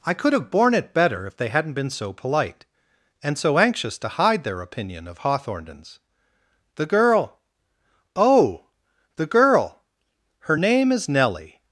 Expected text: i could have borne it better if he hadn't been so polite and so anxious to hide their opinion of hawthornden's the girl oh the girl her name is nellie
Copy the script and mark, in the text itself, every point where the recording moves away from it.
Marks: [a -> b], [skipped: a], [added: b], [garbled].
i could have borne it better if [he -> they] hadn't been so polite and so anxious to hide their opinion of hawthornden's the girl oh the girl her name is nellie